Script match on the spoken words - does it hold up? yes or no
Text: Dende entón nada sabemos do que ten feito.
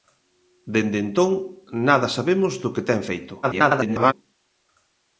no